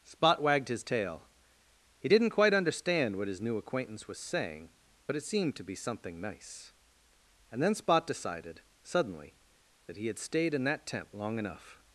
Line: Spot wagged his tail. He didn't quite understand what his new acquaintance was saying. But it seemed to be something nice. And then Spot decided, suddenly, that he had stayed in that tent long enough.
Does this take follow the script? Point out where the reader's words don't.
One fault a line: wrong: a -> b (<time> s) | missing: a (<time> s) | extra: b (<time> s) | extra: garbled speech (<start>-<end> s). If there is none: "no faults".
no faults